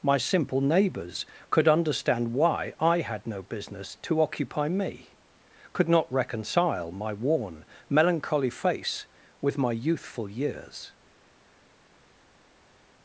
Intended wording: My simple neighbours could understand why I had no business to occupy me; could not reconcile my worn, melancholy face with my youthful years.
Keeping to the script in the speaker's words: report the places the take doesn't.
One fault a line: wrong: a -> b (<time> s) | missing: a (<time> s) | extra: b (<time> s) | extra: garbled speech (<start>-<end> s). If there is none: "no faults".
no faults